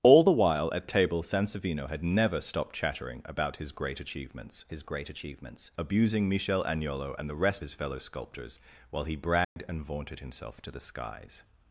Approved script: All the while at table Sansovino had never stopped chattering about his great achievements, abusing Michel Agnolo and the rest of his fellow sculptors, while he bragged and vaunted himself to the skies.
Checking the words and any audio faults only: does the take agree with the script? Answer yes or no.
no